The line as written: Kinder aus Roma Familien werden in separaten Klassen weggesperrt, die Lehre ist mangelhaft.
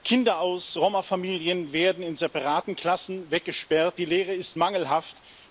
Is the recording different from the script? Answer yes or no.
no